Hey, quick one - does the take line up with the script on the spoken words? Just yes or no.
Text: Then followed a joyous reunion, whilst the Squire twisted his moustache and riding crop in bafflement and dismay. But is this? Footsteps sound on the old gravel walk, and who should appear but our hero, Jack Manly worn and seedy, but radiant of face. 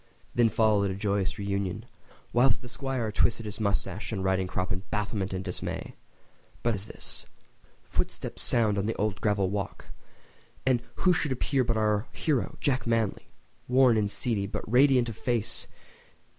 yes